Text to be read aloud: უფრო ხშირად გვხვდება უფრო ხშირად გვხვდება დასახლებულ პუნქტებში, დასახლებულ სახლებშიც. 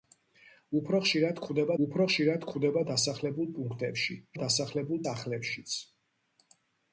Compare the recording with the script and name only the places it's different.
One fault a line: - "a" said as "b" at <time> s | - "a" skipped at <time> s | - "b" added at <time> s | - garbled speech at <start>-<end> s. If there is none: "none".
none